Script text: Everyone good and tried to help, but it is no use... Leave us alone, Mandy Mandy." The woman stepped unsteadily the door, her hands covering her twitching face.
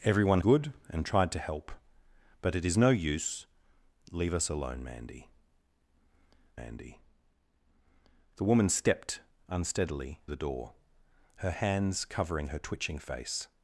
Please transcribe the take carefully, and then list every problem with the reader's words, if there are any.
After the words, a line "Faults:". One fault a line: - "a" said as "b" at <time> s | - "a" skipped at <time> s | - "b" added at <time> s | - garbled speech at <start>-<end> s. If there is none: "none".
Everyone good and tried to help, but it is no use... Leave us alone, Mandy Mandy." The woman stepped unsteadily the door, her hands covering her twitching face.
Faults:
none